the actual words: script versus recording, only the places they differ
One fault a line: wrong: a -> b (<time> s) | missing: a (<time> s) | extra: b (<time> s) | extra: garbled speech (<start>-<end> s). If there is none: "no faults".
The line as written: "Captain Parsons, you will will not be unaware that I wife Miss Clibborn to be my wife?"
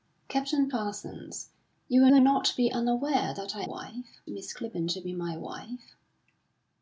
no faults